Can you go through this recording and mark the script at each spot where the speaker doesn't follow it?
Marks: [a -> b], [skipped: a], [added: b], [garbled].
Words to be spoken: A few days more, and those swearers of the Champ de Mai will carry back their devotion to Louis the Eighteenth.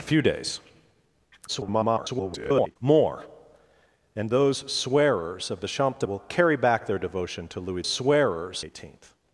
A few days [garbled] more, and those swearers of the Champ de [skipped: Mai] will carry back their devotion to Louis [the -> swearers] Eighteenth.